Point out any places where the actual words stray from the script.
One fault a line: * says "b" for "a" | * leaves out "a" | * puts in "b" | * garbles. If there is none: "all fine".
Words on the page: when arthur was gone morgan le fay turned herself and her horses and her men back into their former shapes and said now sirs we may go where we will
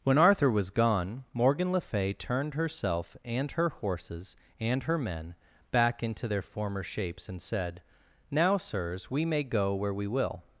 all fine